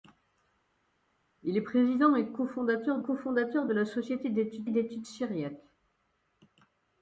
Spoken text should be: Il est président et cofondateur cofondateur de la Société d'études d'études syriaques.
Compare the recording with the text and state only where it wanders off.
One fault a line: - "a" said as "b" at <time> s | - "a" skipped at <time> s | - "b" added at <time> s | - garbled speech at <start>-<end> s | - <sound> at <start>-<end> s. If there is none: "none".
none